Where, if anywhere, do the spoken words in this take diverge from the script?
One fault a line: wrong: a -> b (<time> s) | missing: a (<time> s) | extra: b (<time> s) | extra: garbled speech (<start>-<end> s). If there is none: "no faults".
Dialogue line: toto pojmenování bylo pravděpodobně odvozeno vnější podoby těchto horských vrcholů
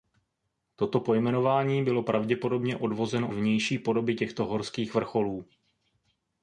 no faults